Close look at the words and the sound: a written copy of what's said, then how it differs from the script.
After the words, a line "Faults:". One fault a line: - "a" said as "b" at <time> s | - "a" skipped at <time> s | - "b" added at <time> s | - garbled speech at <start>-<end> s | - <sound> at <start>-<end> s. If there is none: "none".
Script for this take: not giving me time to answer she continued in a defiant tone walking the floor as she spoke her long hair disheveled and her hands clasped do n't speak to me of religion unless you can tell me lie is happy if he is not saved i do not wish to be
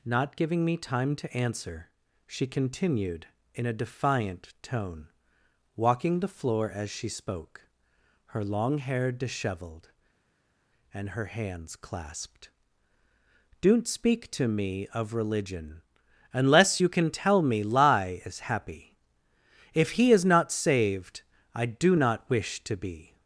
not giving me time to answer she continued in a defiant tone walking the floor as she spoke her long hair disheveled and her hands clasped do n't speak to me of religion unless you can tell me lie is happy if he is not saved i do not wish to be
Faults:
none